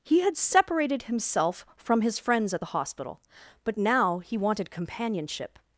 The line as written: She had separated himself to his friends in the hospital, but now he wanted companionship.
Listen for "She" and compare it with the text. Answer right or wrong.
wrong